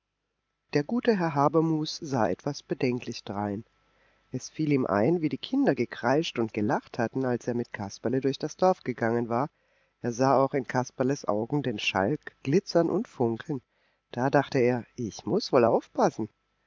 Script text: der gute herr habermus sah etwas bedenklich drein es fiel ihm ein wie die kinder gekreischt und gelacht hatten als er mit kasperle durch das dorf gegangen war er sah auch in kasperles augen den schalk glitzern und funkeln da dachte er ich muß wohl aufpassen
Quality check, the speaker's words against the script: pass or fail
pass